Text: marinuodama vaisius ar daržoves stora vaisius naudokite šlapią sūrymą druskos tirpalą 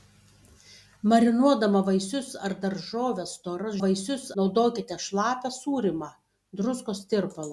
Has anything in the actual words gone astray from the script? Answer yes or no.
no